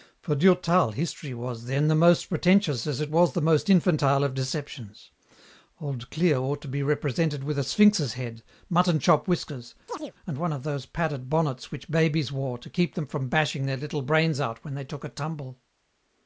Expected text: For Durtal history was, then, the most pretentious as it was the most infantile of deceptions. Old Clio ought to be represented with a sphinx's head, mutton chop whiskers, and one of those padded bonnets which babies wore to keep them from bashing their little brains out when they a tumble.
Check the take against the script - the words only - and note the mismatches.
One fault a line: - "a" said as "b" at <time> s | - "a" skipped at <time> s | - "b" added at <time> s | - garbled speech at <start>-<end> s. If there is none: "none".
- "took" added at 14.8 s